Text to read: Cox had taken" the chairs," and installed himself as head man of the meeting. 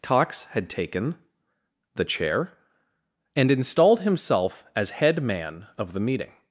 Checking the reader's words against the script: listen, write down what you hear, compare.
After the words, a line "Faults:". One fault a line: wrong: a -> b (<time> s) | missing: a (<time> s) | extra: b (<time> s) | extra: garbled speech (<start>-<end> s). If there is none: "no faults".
Cox had taken" the chair," and installed himself as head man of the meeting.
Faults:
wrong: chairs -> chair (2.0 s)